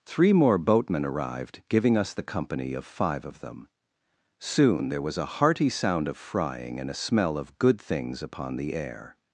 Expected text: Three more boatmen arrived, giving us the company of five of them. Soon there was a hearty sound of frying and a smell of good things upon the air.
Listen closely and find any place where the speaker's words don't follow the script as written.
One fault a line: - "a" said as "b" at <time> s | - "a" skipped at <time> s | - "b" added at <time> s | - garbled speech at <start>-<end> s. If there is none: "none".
none